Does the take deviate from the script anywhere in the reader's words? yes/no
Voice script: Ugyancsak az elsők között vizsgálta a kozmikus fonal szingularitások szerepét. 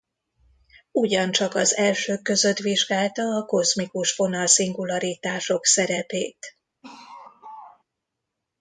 no